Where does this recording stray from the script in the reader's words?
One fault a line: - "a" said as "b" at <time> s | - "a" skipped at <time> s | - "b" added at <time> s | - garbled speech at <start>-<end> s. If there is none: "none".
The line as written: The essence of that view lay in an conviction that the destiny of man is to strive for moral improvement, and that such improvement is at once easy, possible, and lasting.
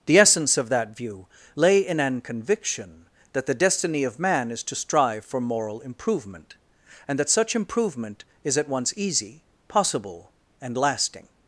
none